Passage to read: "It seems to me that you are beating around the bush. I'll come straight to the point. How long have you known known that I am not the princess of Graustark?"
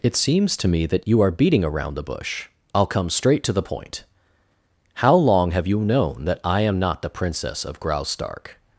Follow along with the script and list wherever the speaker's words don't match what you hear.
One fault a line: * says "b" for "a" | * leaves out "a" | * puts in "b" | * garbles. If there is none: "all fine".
* leaves out "known"